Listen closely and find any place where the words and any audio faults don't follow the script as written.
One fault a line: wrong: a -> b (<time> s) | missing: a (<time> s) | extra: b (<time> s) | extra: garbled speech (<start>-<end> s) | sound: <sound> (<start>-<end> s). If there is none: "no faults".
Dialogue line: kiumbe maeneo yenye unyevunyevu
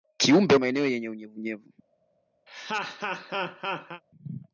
sound: laugh (2.5-4.0 s)